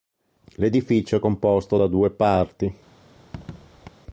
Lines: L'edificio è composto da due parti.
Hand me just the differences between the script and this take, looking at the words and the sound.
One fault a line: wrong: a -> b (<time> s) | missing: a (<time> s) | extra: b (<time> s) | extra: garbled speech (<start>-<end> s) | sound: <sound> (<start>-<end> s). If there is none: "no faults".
sound: squeak (3.1-3.9 s)